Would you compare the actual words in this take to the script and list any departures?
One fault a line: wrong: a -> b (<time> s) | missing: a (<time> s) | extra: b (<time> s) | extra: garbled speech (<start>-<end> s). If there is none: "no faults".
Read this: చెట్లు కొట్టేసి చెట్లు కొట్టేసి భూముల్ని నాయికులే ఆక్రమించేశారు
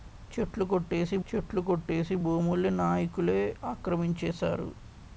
no faults